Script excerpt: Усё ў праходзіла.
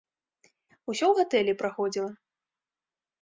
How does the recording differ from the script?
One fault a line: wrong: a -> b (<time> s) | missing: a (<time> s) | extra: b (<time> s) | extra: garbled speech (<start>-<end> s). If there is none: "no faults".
extra: гатэлі (1.2 s)